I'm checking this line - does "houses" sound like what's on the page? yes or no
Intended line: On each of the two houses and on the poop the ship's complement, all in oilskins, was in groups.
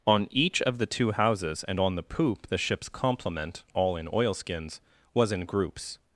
yes